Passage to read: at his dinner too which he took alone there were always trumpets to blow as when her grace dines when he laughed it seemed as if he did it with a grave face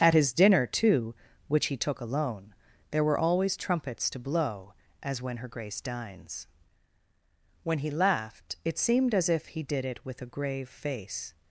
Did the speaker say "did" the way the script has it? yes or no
yes